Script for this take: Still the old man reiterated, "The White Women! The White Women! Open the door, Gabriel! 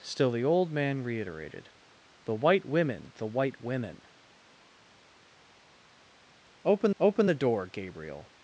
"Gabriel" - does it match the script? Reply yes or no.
yes